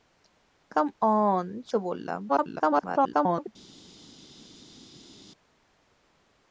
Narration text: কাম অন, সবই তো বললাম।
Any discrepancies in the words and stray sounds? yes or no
yes